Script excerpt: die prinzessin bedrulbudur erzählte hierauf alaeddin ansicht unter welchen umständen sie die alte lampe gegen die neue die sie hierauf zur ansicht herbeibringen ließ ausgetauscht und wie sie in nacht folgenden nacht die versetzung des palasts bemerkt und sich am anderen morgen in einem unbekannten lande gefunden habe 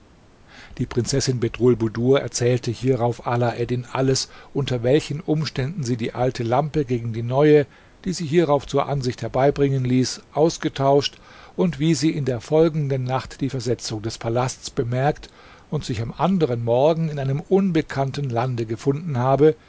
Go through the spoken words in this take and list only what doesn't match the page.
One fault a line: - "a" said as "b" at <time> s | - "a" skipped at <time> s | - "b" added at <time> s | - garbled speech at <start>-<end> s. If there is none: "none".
- "ansicht" said as "alles" at 3.9 s
- "nacht" said as "der" at 12.2 s